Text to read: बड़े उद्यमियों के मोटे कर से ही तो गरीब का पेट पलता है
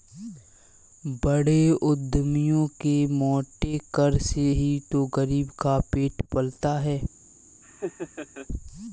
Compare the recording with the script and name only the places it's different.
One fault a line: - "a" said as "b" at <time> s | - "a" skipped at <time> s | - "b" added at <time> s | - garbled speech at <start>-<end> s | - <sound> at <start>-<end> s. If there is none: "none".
- laugh at 7.6-8.5 s